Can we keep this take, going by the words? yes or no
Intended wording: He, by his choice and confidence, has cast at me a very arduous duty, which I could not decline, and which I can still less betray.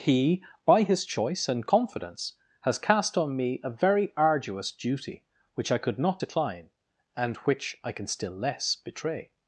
no